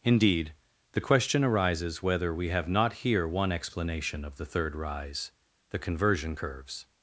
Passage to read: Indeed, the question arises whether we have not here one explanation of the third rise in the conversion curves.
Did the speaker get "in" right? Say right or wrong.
wrong